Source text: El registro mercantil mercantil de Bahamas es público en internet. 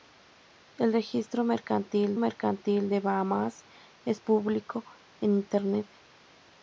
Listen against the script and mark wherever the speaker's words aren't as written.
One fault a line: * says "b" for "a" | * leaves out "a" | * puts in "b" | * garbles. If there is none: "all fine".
all fine